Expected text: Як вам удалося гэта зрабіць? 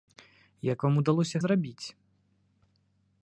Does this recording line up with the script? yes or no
no